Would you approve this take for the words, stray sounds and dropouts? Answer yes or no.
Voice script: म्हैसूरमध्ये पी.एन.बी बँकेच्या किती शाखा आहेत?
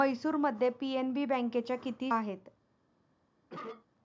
no